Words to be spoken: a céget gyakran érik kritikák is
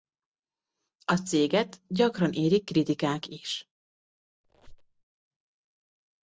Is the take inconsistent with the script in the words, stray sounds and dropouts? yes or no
yes